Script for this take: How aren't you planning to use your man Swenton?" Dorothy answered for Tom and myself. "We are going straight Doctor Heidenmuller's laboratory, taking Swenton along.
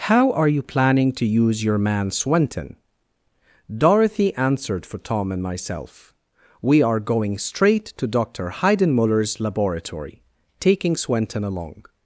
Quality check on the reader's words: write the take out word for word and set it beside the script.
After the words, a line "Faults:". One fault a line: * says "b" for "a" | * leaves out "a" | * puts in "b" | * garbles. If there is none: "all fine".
How are you planning to use your man Swenton?" Dorothy answered for Tom and myself. "We are going straight to Doctor Heidenmuller's laboratory, taking Swenton along.
Faults:
* says "are" for "aren't"
* puts in "to"